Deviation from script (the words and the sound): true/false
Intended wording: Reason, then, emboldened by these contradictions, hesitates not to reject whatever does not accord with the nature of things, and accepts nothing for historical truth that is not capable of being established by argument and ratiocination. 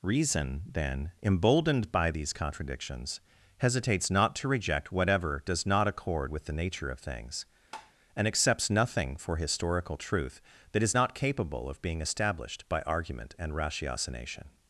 true